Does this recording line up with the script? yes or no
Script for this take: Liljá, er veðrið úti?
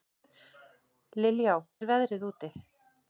yes